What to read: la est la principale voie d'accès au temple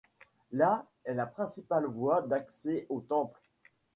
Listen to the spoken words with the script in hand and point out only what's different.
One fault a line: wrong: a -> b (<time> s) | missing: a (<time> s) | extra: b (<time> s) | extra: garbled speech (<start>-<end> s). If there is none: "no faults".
no faults